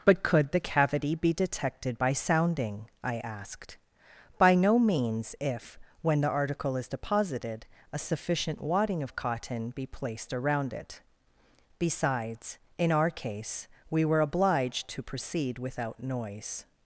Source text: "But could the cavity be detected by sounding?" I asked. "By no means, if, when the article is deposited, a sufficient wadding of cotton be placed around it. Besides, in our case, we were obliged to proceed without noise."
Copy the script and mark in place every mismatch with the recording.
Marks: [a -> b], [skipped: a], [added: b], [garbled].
"But could the cavity be detected by sounding?" I asked. "By no means, if, when the article is deposited, a sufficient wadding of cotton be placed around it. Besides, in our case, we were obliged to proceed without noise."